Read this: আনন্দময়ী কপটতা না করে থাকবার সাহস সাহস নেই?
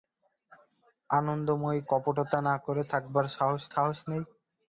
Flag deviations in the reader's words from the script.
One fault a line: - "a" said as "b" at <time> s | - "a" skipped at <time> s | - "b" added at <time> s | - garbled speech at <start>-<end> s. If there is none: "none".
none